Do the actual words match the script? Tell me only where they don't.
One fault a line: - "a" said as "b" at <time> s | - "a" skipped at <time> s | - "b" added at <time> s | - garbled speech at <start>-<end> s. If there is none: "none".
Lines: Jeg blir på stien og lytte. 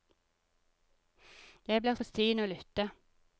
none